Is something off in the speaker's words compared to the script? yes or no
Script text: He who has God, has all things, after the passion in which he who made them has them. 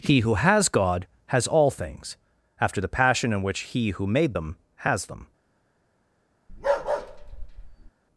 no